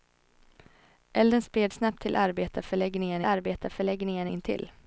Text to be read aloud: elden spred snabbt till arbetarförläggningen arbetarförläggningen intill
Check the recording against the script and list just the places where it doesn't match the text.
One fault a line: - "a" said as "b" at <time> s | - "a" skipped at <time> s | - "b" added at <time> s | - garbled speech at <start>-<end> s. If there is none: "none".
none